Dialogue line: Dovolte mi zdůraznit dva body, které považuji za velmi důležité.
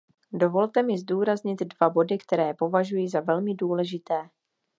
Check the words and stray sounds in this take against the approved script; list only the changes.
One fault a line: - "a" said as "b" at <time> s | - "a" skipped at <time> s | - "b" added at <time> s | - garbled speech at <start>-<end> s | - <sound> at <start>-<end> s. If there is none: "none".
none